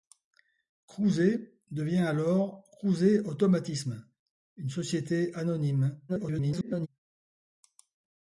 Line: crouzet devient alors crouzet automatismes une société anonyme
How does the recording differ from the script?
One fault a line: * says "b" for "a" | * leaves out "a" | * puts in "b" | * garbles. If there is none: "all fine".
* garbles